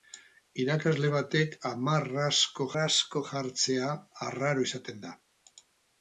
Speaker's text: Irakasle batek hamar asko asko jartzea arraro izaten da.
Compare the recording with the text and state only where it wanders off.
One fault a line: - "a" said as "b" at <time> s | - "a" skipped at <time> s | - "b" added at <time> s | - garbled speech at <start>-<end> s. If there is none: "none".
none